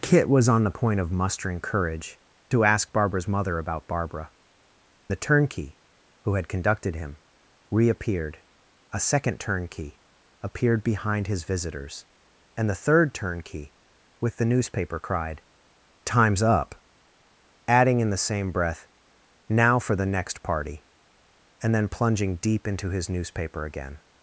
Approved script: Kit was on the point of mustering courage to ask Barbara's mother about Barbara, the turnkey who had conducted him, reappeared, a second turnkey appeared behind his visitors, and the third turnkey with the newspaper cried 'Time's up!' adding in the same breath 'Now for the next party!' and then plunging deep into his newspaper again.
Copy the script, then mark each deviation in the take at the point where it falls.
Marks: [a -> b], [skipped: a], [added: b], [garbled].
Kit was on the point of mustering courage to ask Barbara's mother about Barbara, the turnkey who had conducted him, reappeared, a second turnkey appeared behind his visitors, and the third turnkey with the newspaper cried 'Time's up!' adding in the same breath 'Now for the next party!' and then plunging deep into his newspaper again.